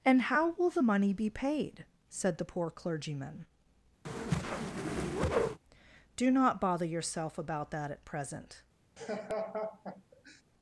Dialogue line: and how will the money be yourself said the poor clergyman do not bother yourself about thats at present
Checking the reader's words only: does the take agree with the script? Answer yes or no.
no